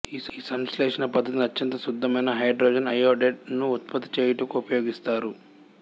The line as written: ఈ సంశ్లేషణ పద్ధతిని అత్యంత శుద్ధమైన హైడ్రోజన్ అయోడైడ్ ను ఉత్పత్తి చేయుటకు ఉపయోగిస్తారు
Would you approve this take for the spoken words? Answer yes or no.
yes